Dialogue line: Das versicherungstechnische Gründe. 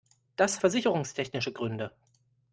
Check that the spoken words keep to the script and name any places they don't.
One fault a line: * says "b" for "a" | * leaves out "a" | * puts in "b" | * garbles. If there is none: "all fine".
all fine